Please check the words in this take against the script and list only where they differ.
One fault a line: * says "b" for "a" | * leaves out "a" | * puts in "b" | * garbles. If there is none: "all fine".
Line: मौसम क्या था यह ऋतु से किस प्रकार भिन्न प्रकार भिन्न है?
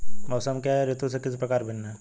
* says "है" for "था"
* leaves out "प्रकार भिन्न"